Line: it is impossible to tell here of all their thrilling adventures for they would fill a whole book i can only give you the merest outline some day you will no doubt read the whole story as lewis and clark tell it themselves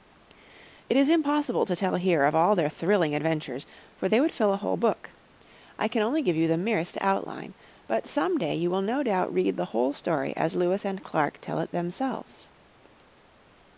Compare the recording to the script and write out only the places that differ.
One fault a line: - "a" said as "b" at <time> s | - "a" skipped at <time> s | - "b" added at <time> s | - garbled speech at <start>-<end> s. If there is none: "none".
- "but" added at 7.9 s